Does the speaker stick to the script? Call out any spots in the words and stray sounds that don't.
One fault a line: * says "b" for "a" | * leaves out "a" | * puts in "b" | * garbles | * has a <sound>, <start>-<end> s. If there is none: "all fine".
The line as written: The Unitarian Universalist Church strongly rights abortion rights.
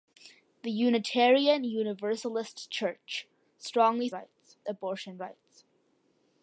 all fine